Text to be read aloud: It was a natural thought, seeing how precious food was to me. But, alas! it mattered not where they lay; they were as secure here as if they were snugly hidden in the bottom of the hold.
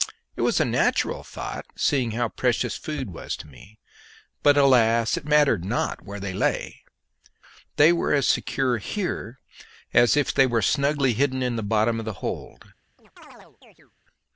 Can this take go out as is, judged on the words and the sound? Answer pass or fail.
fail